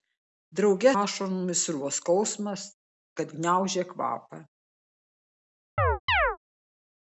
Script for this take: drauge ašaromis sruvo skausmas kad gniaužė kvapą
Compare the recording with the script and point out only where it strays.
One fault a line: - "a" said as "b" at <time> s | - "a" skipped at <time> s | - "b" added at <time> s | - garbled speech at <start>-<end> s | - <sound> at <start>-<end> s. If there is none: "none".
- chirp at 5.8-6.4 s